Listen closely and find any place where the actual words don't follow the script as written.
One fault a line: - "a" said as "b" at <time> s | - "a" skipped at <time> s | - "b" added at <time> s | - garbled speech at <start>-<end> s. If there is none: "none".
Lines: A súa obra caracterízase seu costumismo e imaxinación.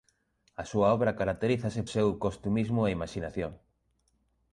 none